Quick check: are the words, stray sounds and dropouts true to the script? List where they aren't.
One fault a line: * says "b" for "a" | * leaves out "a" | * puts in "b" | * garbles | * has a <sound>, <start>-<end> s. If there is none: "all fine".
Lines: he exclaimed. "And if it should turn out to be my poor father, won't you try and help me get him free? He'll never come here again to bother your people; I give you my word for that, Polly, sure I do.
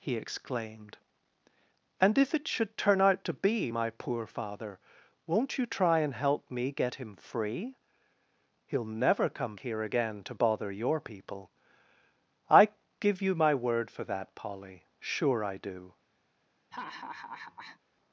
* has a laugh, 16.7-17.8 s